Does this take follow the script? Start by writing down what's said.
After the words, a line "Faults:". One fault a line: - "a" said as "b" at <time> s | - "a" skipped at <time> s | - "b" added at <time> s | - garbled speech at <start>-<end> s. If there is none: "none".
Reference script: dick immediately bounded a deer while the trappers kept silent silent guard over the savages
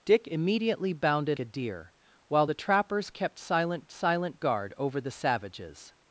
dick immediately bounded a deer while the trappers kept silent silent guard over the savages
Faults:
none